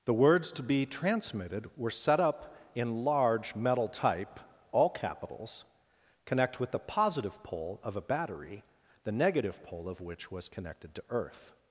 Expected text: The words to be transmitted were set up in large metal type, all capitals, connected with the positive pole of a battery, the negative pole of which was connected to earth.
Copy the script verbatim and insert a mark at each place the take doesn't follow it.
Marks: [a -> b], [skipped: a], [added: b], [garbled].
The words to be transmitted were set up in large metal type, all capitals, [connected -> connect] with the positive pole of a battery, the negative pole of which was connected to earth.